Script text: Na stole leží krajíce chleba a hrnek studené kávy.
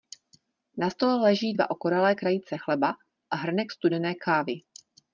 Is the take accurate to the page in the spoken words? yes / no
no